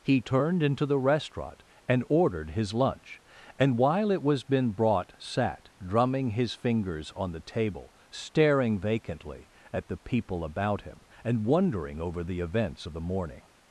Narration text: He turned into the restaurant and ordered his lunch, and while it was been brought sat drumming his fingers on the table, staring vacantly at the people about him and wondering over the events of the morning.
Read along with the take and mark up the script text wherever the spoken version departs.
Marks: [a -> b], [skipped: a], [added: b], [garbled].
He turned into the restaurant and ordered his lunch, and while it was been brought sat drumming his fingers on the table, staring vacantly at the people about him and wondering over the events of the morning.